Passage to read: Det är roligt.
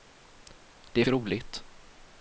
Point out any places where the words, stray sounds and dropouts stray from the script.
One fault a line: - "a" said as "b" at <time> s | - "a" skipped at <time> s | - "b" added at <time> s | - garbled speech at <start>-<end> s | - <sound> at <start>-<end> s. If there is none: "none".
none